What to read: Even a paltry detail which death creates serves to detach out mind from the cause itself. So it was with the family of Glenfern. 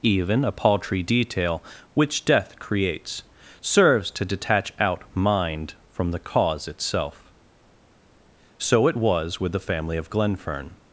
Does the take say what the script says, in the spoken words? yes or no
yes